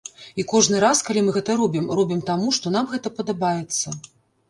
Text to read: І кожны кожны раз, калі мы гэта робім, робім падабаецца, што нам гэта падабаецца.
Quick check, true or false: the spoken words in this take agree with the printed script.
false